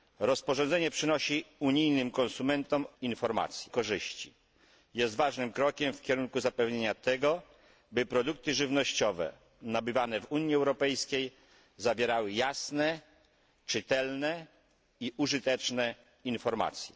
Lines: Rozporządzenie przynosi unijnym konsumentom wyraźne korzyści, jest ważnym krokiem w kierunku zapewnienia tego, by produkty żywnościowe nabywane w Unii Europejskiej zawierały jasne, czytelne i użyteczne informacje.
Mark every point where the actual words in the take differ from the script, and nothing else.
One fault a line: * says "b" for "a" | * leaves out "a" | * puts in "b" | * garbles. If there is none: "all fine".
* says "informacje" for "wyraźne"